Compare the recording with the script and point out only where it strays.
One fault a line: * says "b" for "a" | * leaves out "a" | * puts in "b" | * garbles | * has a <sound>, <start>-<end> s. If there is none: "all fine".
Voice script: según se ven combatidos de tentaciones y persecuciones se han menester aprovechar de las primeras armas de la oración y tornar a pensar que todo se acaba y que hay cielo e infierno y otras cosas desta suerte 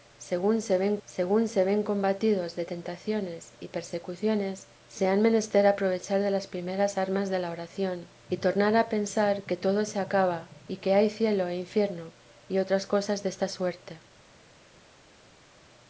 * puts in "según se ven"